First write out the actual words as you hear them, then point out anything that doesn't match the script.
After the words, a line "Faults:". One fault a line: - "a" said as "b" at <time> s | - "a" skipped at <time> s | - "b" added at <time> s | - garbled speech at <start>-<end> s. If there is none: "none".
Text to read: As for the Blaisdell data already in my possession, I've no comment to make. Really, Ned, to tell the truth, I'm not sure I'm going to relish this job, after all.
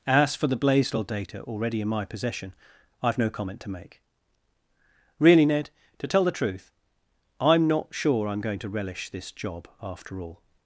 As for the Blaisdell data already in my possession, I've no comment to make. Really, Ned, to tell the truth, I'm not sure I'm going to relish this job, after all.
Faults:
none